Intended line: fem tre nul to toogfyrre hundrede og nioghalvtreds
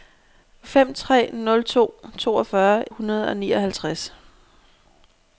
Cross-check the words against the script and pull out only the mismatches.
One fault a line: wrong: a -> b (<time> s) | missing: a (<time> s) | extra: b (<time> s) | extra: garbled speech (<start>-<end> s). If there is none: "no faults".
no faults